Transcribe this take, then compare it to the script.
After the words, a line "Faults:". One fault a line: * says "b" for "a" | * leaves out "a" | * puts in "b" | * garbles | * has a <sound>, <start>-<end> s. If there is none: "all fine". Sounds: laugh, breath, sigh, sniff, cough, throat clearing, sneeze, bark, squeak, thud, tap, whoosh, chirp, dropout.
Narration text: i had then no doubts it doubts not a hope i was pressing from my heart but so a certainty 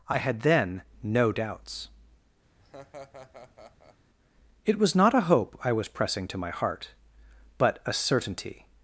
i had then no doubts it was not a hope i was pressing to my heart but a certainty
Faults:
* has a laugh, 2.6-4.0 s
* says "was" for "doubts"
* says "to" for "from"
* leaves out "so"